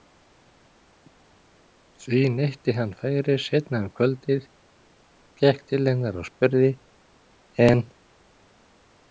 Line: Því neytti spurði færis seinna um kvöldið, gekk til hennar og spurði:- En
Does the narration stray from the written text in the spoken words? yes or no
yes